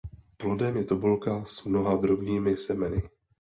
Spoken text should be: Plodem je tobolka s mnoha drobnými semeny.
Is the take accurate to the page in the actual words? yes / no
yes